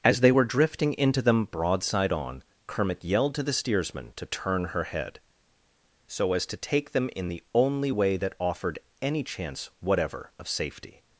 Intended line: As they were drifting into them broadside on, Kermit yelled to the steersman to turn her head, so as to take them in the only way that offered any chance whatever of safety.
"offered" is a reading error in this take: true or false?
false